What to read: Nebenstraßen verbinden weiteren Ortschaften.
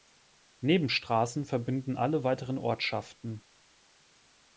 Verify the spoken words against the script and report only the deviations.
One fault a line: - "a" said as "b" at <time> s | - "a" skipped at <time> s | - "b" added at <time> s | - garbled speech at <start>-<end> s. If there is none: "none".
- "alle" added at 2.0 s